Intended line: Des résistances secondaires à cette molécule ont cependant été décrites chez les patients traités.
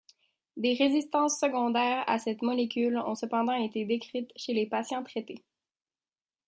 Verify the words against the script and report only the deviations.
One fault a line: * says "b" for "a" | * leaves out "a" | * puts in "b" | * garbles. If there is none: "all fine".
all fine